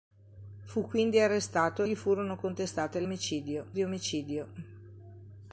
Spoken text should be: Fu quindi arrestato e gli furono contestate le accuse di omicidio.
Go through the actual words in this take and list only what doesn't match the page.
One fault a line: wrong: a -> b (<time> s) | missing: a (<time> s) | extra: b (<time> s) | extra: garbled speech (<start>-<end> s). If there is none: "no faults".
missing: e (1.8 s)
wrong: accuse -> omicidio (3.0 s)